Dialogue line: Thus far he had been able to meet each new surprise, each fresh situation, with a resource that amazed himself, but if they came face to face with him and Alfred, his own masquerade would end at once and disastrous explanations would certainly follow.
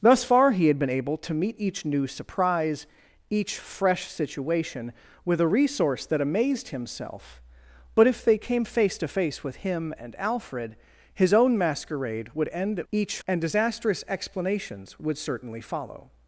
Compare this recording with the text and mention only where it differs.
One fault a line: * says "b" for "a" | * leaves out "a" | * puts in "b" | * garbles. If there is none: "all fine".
* says "each" for "once"